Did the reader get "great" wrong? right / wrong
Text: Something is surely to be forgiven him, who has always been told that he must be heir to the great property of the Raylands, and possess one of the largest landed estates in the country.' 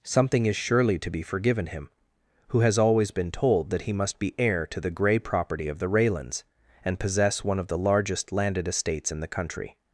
wrong